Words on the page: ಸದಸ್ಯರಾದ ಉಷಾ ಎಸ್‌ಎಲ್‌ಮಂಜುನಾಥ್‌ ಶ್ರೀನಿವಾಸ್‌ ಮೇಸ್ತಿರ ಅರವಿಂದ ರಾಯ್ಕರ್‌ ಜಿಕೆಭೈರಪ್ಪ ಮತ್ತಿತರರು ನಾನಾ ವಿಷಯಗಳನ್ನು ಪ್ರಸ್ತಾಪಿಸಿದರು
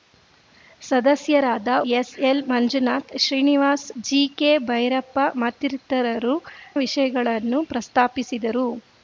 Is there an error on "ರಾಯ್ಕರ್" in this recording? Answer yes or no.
yes